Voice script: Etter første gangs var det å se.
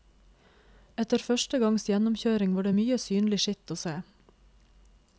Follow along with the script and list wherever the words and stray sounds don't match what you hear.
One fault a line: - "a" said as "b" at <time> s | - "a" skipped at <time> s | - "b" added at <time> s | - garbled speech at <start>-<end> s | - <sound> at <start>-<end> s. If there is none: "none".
- "gjennomkjøring" added at 1.9 s
- "mye synlig skitt" added at 2.8 s